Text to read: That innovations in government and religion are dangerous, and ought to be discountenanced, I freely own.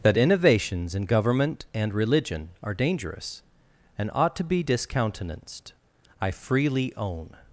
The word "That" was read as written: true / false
true